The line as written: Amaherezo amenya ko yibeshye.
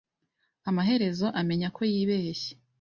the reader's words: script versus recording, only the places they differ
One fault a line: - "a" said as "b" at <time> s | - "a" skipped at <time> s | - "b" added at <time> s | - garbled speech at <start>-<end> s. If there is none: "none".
none